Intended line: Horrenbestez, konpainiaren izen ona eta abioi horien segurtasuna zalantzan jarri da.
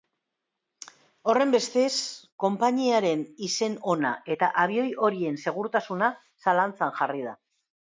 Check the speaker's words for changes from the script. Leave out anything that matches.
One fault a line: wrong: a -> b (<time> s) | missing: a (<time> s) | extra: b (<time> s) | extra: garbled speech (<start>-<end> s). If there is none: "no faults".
no faults